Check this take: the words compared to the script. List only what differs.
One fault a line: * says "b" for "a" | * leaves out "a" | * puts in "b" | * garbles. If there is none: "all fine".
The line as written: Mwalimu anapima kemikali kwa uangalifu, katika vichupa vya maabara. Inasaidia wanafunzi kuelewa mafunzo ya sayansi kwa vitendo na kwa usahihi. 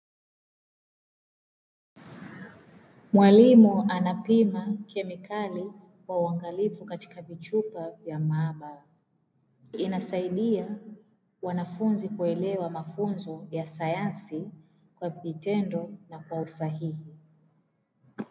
all fine